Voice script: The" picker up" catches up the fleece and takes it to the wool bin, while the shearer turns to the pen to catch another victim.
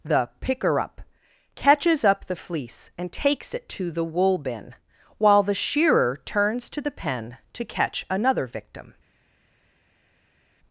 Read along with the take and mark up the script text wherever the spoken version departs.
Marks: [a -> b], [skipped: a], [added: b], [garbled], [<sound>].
The" picker up" catches up the fleece and takes it to the wool bin, while the shearer turns to the pen to catch another victim.